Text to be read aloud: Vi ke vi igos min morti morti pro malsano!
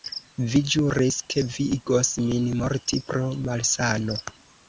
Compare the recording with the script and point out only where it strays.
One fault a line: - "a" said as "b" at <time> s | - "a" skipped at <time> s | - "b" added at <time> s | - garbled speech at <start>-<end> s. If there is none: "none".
- "ĵuris" added at 0.8 s
- "morti" skipped at 3.0 s